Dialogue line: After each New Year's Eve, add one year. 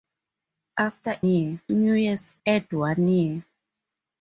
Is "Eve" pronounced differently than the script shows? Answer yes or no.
yes